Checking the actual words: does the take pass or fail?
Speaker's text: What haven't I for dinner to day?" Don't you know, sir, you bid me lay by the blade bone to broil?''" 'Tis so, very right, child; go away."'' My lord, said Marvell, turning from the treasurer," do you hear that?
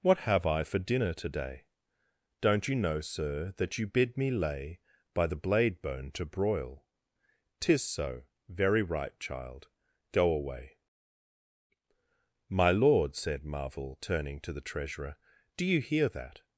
fail